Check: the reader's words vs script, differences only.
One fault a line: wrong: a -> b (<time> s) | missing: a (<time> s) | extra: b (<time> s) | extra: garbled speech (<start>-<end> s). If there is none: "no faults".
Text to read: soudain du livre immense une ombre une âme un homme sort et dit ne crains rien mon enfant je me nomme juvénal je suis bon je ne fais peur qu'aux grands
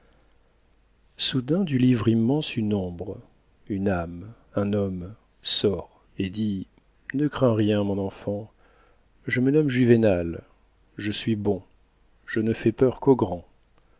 no faults